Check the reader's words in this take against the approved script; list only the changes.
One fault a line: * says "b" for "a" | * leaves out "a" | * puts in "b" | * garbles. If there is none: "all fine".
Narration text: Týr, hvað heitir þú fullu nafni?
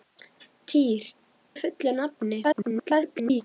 * leaves out "hvað heitir"
* garbles